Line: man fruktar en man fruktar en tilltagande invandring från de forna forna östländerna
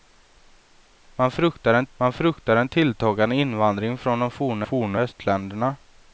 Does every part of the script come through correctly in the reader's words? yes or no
yes